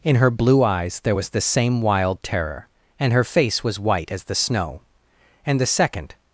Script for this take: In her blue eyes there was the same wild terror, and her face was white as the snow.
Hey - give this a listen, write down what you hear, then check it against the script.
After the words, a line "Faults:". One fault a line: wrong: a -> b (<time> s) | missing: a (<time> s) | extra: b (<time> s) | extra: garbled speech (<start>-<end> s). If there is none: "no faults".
In her blue eyes there was the same wild terror, and her face was white as the snow. And the second
Faults:
extra: And the second (5.5 s)